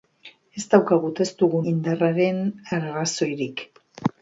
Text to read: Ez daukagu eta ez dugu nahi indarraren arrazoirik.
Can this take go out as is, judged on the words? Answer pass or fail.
fail